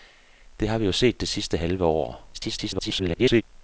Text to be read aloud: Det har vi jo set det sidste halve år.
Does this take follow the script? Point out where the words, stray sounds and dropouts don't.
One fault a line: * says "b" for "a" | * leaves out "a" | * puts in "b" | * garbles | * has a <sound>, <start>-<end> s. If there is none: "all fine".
* garbles